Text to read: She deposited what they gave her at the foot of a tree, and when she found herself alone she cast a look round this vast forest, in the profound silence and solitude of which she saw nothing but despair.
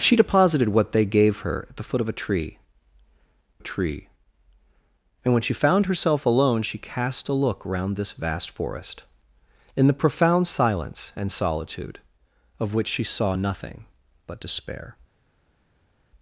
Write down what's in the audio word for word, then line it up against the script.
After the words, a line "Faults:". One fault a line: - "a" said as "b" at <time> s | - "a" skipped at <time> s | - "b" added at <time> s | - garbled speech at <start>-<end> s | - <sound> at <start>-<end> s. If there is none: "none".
She deposited what they gave her at the foot of a tree a tree, and when she found herself alone she cast a look round this vast forest, in the profound silence and solitude of which she saw nothing but despair.
Faults:
- "a tree" added at 3.6 s